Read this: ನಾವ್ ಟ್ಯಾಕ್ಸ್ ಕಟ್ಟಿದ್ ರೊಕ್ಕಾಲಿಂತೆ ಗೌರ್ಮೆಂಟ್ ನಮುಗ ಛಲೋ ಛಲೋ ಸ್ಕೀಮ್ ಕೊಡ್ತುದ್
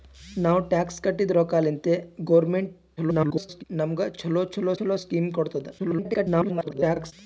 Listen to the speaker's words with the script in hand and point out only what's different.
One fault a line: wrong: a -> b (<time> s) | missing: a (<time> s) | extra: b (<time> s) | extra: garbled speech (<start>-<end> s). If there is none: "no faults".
extra: garbled speech (3.0-3.6 s)
extra: ಛಲೋ (4.8 s)
extra: garbled speech (5.8-7.1 s)